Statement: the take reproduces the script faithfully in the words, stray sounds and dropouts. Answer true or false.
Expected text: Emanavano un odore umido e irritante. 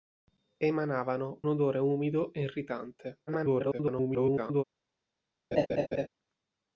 false